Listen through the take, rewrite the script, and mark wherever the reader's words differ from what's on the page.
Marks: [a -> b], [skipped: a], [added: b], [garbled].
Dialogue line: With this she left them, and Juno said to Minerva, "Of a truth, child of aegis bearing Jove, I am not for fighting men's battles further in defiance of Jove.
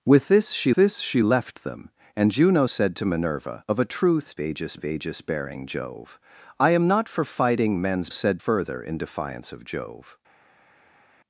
With this she [added: this she] left them, and Juno said to Minerva, "Of a truth, [child -> aegis] of aegis bearing Jove, I am not for fighting men's [battles -> said] further in defiance of Jove.